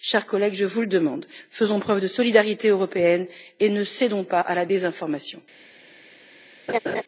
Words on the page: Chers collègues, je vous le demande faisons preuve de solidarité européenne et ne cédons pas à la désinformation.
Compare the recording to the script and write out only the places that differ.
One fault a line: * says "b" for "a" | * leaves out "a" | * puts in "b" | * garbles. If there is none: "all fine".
all fine